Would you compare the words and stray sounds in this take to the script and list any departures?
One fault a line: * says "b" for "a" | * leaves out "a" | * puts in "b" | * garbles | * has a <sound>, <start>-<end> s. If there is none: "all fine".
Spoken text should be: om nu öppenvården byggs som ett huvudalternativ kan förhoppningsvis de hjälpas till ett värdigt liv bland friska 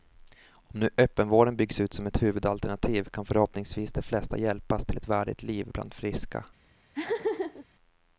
* puts in "ut"
* puts in "flesta"
* has a laugh, 6.9-7.7 s